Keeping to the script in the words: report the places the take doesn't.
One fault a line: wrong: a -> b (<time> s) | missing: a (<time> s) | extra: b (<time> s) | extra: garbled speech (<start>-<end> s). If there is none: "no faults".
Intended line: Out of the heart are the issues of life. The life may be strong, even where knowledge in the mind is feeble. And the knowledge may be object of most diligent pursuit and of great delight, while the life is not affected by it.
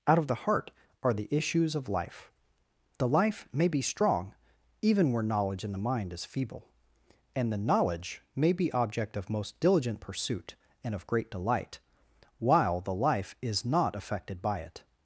no faults